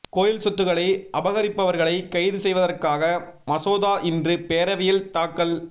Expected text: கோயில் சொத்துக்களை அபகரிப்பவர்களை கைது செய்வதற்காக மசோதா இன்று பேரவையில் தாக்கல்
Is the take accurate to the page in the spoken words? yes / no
yes